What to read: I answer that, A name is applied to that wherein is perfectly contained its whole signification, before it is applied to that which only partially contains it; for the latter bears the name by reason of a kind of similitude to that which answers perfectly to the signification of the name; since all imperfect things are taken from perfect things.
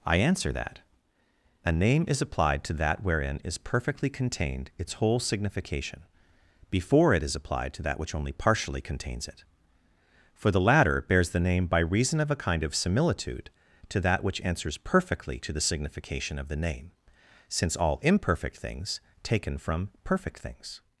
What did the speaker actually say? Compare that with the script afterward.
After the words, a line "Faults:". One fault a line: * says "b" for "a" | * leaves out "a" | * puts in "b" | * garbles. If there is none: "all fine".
I answer that, A name is applied to that wherein is perfectly contained its whole signification, before it is applied to that which only partially contains it; for the latter bears the name by reason of a kind of similitude to that which answers perfectly to the signification of the name; since all imperfect things taken from perfect things.
Faults:
* leaves out "are"